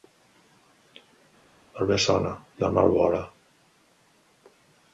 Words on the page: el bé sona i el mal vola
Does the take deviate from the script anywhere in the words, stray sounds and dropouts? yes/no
no